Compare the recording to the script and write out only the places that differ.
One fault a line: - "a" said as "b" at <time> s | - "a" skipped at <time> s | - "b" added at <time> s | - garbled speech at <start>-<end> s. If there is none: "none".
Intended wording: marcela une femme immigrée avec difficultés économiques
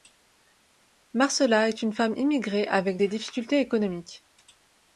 - "est" added at 1.7 s
- "des" added at 3.0 s